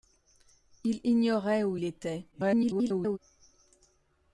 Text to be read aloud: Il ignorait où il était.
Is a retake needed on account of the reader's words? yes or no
yes